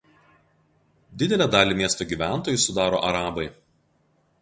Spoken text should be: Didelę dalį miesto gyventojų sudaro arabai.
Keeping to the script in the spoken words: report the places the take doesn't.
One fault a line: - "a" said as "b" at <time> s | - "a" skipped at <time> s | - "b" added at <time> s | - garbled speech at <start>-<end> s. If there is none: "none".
none